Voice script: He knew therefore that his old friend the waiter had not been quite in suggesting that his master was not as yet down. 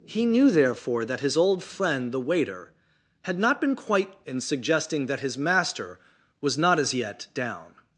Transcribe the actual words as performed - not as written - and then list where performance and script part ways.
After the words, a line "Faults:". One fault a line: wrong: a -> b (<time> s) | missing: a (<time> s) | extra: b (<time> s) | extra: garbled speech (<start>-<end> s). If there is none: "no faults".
He knew therefore that his old friend the waiter had not been quite in suggesting that his master was not as yet down.
Faults:
no faults